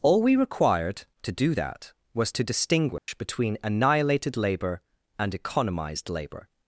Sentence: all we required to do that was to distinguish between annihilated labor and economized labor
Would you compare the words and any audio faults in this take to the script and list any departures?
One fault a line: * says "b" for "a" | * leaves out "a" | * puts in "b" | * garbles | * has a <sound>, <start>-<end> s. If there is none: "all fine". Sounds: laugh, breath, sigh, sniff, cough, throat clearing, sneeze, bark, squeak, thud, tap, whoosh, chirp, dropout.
* has a dropout, 3.0-3.1 s